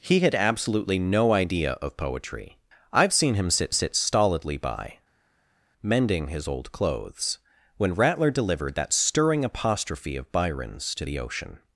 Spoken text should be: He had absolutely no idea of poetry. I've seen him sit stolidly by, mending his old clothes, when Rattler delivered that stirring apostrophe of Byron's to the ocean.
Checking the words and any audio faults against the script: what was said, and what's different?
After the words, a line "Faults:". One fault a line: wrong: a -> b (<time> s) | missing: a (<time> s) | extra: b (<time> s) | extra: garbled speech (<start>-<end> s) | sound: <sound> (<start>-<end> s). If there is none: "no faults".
He had absolutely no idea of poetry. I've seen him sit sit stolidly by, mending his old clothes, when Rattler delivered that stirring apostrophe of Byron's to the ocean.
Faults:
extra: sit (3.7 s)